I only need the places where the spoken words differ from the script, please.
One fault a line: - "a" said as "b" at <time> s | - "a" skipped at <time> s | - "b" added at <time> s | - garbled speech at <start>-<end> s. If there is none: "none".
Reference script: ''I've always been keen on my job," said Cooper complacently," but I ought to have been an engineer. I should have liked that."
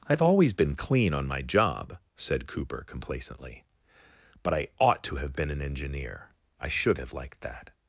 - "keen" said as "clean" at 0.8 s